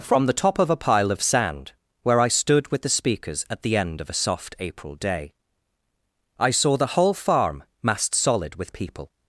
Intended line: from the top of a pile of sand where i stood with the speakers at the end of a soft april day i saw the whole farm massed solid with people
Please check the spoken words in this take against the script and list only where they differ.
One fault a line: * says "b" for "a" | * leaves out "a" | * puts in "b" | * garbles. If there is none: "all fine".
all fine